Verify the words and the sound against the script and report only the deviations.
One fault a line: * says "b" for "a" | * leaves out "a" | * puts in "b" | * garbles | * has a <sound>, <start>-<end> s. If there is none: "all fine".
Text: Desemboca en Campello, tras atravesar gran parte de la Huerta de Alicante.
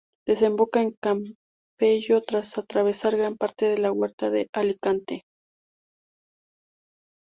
all fine